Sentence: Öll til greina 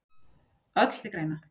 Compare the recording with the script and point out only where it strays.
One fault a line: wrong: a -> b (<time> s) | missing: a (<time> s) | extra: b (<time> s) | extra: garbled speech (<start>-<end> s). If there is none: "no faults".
no faults